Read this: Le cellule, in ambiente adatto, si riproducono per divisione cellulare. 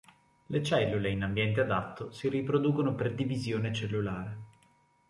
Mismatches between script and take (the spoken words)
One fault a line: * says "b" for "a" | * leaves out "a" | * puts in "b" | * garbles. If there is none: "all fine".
all fine